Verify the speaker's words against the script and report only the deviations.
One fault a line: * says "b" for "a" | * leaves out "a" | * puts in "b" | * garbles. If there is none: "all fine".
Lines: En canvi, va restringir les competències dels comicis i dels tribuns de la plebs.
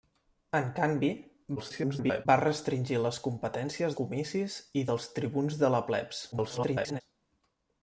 * garbles
* leaves out "dels"
* garbles